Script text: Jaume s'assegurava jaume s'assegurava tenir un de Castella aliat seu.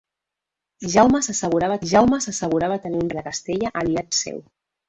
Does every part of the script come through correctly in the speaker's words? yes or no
yes